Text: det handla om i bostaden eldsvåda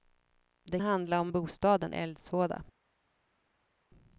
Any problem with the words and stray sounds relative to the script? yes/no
no